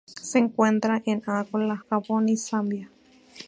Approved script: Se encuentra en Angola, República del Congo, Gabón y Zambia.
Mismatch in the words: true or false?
true